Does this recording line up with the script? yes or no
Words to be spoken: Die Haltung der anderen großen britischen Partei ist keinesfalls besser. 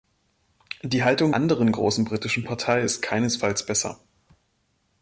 no